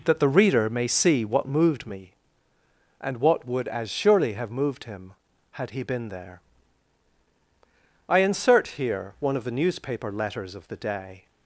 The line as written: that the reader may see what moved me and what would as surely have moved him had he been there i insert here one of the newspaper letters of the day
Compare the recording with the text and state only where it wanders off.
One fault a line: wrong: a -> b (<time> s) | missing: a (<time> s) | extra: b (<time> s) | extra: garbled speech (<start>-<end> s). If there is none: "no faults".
no faults